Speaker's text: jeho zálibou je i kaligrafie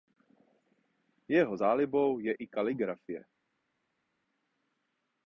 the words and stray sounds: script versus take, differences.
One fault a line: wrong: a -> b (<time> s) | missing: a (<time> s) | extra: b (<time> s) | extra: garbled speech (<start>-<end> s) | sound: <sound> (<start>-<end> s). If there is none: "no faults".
no faults